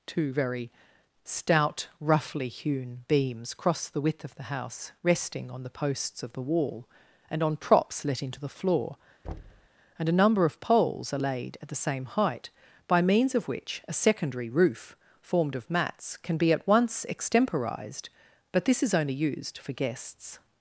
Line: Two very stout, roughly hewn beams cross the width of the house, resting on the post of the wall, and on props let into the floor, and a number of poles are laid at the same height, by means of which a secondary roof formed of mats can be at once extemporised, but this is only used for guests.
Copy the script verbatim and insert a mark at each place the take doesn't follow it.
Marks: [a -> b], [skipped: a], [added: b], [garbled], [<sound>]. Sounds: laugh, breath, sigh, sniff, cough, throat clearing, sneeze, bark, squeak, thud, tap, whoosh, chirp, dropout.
Two very stout, roughly hewn beams cross the width of the house, resting on the [post -> posts] of the wall, and on props let into the floor, [thud] and a number of poles are laid at the same height, by means of which a secondary roof formed of mats can be at once extemporised, but this is only used for guests.